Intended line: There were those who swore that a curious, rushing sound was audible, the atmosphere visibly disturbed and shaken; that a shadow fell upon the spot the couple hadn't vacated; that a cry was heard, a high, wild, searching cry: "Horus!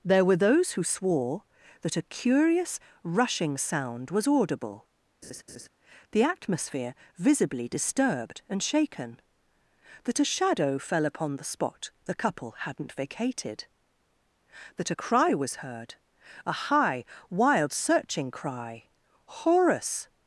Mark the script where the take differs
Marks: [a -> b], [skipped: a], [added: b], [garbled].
There were those who swore that a curious, rushing sound was audible, the atmosphere visibly disturbed and shaken; that a shadow fell upon the spot the couple hadn't vacated; that a cry was heard, a high, wild, searching cry: "Horus!